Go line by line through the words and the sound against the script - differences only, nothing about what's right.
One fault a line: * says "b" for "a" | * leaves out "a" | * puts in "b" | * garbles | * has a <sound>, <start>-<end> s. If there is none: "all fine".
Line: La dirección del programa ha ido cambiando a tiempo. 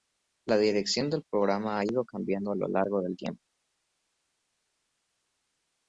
* puts in "lo largo del"